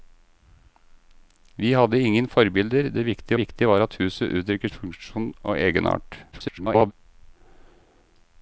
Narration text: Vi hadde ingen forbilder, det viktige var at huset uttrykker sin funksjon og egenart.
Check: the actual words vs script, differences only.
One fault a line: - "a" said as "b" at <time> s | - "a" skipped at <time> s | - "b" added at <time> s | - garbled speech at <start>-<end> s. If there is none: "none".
- "viktige" added at 3.4 s
- "sin" skipped at 4.7 s
- garbled speech at 6.3-6.9 s